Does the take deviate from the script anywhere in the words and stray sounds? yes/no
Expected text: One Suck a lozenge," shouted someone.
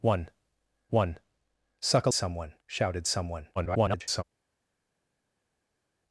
yes